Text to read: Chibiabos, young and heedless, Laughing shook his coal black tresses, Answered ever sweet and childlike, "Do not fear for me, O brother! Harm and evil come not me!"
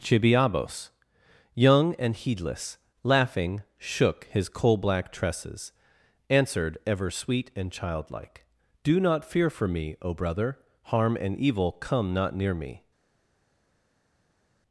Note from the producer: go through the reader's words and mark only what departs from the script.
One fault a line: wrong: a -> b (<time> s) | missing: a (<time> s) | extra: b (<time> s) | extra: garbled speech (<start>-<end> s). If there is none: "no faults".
extra: near (12.3 s)